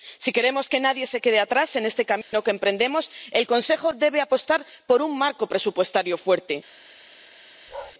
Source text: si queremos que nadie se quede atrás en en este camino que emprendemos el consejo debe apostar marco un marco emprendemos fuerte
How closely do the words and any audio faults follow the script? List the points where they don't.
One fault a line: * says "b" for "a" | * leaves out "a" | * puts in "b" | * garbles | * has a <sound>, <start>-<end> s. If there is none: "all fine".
* leaves out "en"
* has a dropout, 2.2-2.3 s
* says "por" for "marco"
* says "presupuestario" for "emprendemos"
* has a bark, 7.7-7.9 s